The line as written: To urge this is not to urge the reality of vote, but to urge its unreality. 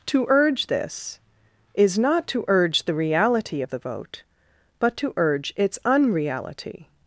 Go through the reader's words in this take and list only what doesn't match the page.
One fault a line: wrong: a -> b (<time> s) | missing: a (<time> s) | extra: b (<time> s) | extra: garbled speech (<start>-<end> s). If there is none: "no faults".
extra: the (3.7 s)